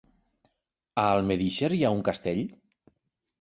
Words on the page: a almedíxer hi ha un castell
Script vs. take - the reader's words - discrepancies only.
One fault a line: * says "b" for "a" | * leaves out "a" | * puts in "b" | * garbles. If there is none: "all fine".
all fine